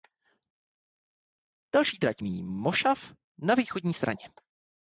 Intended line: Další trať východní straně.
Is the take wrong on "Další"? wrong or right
right